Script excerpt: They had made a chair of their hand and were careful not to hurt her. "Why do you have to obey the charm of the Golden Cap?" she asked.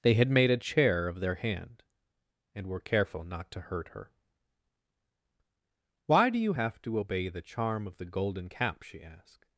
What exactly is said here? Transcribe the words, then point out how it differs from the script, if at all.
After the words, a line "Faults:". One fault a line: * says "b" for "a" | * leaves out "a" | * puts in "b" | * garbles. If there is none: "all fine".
They had made a chair of their hand and were careful not to hurt her. "Why do you have to obey the charm of the Golden Cap?" she asked.
Faults:
all fine